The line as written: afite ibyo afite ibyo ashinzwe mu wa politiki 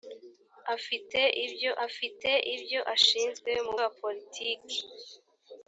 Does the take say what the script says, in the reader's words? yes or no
yes